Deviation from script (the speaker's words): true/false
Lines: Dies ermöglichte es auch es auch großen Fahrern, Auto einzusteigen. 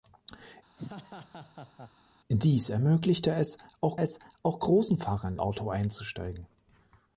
false